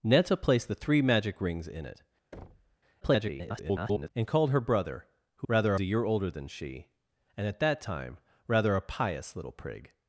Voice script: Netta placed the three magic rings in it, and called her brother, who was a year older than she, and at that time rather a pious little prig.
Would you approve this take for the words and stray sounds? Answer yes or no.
no